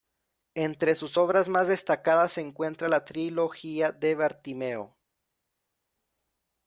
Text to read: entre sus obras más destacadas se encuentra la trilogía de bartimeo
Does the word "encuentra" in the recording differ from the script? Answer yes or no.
no